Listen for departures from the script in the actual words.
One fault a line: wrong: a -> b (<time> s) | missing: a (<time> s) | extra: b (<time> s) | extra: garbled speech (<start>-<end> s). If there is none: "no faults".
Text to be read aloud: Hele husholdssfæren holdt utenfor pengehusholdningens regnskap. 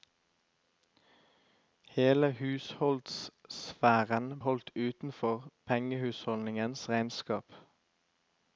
no faults